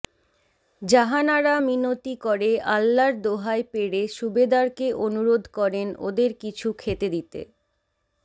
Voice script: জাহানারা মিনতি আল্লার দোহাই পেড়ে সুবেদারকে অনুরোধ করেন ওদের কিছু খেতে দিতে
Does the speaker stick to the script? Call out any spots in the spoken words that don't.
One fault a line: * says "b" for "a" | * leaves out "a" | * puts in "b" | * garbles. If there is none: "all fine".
* puts in "করে"